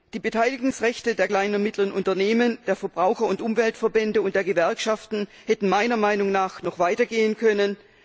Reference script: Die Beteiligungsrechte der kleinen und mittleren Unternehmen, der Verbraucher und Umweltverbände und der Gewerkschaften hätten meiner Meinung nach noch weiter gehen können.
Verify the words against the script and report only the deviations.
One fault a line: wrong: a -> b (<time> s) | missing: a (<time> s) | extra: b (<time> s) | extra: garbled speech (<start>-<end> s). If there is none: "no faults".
no faults